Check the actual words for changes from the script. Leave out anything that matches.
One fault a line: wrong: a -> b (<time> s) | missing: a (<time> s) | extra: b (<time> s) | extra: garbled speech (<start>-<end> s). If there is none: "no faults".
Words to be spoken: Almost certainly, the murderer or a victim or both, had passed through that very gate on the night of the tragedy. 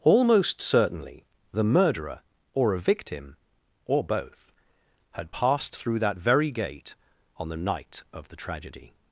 no faults